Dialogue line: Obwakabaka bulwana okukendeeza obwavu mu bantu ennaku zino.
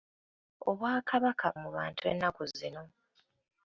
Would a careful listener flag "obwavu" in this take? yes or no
yes